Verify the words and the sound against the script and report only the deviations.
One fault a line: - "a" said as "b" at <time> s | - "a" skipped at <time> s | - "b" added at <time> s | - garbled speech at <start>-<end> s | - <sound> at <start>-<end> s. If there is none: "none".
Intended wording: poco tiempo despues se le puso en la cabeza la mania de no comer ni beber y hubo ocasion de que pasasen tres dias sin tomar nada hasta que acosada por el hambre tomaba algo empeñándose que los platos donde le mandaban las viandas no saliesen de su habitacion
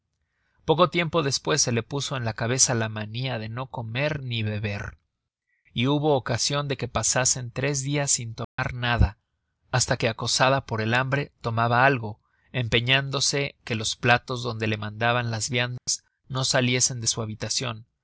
- dropout at 8.4-8.6 s
- dropout at 15.8-15.9 s